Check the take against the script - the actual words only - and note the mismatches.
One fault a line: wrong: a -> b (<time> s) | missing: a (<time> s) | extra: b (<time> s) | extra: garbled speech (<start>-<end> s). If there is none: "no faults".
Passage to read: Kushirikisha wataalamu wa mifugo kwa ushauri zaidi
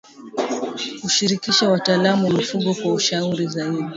no faults